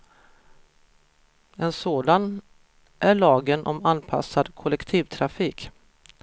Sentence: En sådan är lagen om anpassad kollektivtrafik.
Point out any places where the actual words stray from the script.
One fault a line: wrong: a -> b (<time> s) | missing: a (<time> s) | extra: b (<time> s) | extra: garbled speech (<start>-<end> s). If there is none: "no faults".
no faults